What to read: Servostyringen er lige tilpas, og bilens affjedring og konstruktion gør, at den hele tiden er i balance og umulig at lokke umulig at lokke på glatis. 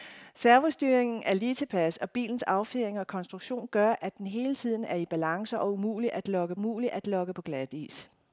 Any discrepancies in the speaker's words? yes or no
no